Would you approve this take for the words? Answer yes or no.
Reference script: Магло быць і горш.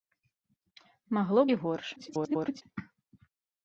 no